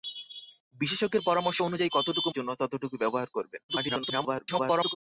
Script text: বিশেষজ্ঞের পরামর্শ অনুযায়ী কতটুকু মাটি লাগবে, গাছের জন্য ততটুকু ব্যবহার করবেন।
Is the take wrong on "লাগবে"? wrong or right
wrong